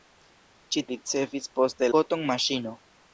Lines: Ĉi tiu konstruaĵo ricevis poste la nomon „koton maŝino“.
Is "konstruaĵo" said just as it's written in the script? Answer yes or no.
no